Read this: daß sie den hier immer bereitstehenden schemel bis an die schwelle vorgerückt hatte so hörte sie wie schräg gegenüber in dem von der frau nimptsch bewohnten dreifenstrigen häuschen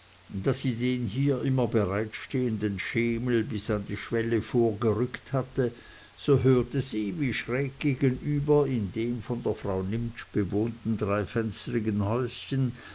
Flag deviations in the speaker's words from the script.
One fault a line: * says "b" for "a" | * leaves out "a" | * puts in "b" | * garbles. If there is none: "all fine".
all fine